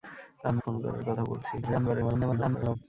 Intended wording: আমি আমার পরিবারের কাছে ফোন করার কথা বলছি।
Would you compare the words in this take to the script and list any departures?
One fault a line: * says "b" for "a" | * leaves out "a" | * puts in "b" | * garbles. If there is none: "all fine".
* leaves out "আমার পরিবারের কাছে"
* garbles